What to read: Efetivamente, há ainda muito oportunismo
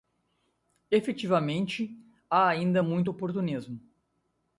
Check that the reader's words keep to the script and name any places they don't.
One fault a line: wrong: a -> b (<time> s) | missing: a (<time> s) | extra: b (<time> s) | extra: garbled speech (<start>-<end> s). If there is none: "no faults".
no faults